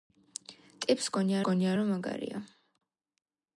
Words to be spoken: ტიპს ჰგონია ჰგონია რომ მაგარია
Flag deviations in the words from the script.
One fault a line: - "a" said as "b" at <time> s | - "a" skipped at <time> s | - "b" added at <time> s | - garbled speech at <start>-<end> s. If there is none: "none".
none